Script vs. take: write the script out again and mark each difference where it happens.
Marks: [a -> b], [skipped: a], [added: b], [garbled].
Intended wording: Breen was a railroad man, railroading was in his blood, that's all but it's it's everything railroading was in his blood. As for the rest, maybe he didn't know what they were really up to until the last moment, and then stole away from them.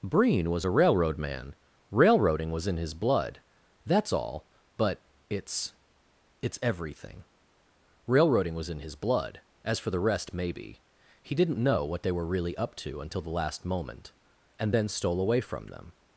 Breen was a railroad man, railroading was in his blood, that's all but it's it's everything railroading was in his blood. As for the rest, maybe he didn't know what they were really up to until the last moment, and then stole away from them.